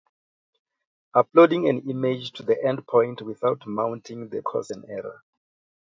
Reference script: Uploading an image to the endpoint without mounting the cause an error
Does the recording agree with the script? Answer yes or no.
yes